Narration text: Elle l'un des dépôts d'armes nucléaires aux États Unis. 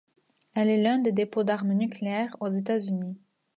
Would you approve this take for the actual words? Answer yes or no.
no